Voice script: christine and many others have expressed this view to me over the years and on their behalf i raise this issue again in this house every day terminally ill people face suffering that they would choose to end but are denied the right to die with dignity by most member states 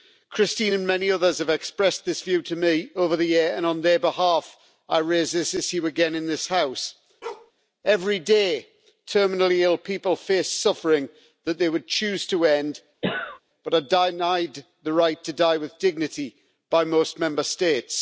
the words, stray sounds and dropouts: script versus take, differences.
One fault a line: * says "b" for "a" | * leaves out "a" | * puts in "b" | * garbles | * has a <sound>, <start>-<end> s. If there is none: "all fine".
* has a bark, 7.2-7.5 s
* has a cough, 13.0-13.4 s